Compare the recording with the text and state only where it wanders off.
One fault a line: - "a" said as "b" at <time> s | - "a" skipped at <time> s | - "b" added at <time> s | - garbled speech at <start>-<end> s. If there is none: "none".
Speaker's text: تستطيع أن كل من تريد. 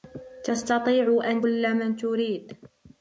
none